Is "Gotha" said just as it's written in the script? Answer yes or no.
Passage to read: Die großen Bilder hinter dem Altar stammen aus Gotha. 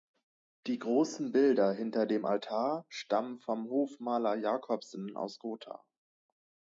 yes